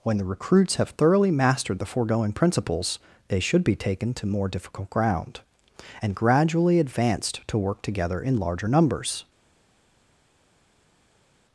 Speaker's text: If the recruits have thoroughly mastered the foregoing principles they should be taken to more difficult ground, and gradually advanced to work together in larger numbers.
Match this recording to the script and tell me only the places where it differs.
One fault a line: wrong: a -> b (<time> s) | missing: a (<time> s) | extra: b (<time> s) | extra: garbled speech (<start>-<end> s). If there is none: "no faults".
wrong: If -> When (0.0 s)